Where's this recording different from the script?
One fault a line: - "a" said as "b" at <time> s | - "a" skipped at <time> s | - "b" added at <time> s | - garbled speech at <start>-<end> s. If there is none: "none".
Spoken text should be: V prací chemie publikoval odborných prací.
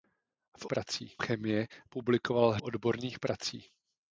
none